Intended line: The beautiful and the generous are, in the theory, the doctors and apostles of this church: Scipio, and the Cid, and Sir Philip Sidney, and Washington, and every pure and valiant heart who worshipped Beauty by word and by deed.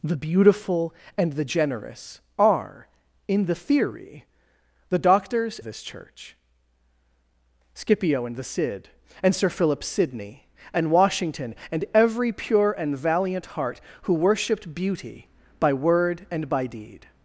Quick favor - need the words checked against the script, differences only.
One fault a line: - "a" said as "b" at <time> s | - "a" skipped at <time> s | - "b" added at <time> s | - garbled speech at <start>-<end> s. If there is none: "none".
- "and apostles of" skipped at 5.6 s